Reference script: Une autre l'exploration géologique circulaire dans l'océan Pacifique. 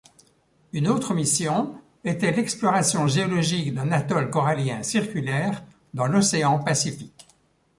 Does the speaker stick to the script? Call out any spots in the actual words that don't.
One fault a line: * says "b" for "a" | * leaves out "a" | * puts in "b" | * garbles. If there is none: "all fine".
* puts in "mission était"
* puts in "d'un atoll corallien"